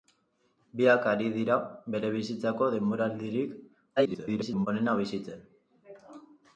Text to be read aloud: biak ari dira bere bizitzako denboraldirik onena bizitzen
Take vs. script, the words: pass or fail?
fail